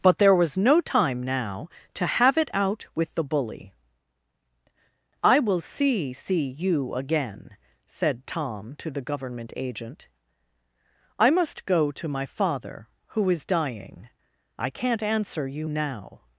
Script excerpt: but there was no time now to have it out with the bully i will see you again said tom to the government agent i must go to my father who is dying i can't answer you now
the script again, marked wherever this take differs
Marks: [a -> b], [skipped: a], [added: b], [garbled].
but there was no time now to have it out with the bully i will see [added: see] you again said tom to the government agent i must go to my father who is dying i can't answer you now